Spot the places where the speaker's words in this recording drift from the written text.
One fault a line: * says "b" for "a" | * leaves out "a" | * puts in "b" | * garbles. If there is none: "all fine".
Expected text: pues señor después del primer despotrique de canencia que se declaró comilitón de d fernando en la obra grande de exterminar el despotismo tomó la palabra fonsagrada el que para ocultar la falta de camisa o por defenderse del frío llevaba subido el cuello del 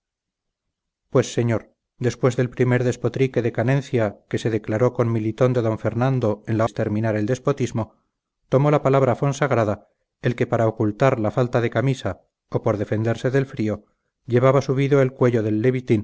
* leaves out "obra grande de"